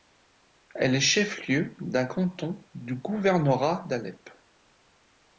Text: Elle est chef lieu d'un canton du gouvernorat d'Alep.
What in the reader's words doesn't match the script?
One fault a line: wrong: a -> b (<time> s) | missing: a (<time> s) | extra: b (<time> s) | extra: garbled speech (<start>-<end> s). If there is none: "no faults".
no faults